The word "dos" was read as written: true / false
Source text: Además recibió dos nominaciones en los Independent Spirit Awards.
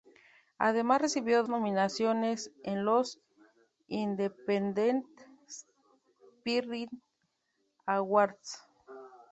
false